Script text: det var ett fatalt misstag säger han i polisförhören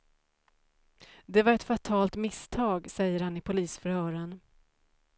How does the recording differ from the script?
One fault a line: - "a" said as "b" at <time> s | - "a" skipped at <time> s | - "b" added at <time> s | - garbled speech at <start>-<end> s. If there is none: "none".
none